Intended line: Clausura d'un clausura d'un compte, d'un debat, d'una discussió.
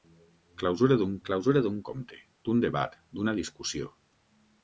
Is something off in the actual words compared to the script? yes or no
no